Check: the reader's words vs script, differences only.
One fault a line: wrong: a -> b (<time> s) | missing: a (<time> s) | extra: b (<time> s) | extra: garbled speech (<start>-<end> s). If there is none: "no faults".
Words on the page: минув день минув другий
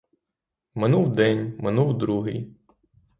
no faults